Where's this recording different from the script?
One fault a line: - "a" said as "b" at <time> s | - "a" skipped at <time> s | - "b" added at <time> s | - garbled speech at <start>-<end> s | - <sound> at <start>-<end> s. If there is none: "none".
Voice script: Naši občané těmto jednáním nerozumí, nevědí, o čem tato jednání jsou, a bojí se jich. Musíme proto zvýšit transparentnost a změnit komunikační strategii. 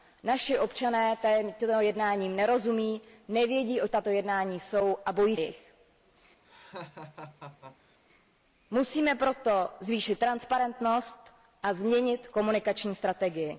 - "čem" skipped at 3.9 s
- "se" skipped at 5.4 s
- laugh at 6.4-8.0 s